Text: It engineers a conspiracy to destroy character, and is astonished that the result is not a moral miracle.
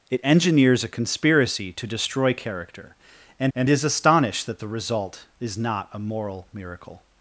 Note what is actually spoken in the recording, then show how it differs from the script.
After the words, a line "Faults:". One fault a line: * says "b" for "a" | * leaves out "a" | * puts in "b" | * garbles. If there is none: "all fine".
It engineers a conspiracy to destroy character, and and is astonished that the result is not a moral miracle.
Faults:
* puts in "and"